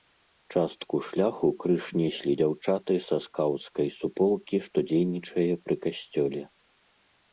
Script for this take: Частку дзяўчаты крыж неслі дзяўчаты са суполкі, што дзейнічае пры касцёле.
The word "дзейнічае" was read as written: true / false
true